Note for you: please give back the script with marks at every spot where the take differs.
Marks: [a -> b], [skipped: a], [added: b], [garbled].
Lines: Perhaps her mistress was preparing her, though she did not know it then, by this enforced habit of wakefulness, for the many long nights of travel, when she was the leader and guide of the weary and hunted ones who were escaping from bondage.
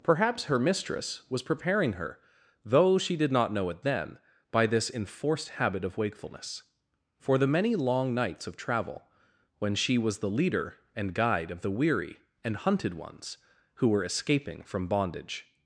Perhaps her mistress was preparing her, though she did not know it then, by this enforced habit of wakefulness, for the many long nights of travel, when she was the leader and guide of the weary and hunted ones who were escaping from bondage.